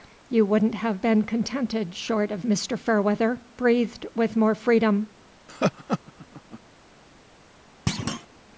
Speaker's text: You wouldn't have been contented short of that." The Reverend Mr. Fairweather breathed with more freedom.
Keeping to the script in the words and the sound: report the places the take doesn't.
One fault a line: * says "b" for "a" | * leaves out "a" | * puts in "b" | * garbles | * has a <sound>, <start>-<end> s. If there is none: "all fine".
* leaves out "that The Reverend"
* has a laugh, 5.5-6.6 s
* has a thud, 7.9-8.3 s